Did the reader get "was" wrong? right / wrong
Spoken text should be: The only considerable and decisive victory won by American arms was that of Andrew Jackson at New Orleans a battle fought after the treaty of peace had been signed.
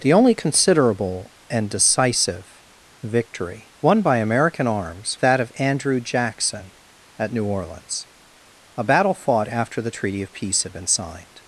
wrong